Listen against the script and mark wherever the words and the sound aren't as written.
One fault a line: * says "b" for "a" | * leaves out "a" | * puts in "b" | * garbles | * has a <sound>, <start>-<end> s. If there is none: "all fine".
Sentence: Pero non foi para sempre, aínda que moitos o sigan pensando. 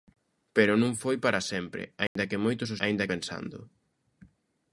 * has a dropout, 2.1-2.2 s
* says "aínda" for "sigan"